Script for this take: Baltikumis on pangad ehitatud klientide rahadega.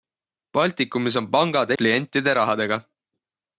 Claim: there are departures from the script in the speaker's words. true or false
true